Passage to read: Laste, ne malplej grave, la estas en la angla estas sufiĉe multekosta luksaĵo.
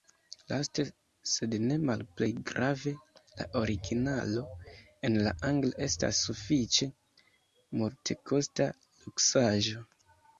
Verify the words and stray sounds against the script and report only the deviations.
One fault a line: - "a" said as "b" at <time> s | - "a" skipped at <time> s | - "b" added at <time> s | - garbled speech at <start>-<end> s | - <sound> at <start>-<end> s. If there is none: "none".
- "sed" added at 1.3 s
- "estas" said as "originalo" at 3.6 s